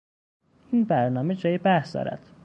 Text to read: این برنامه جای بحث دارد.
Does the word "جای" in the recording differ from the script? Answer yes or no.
no